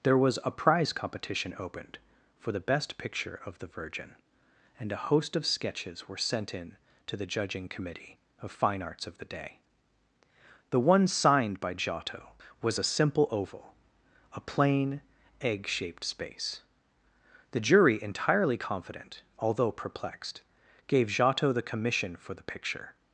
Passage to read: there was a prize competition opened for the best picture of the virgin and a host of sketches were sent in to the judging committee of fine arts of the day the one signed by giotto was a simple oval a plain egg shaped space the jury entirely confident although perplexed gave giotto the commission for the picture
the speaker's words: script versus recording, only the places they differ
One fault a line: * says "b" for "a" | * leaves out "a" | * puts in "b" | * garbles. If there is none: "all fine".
all fine